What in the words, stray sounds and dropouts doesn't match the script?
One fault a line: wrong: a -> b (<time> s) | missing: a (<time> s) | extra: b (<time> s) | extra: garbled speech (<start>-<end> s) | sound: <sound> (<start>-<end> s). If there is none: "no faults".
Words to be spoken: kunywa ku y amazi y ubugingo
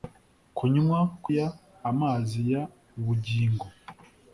no faults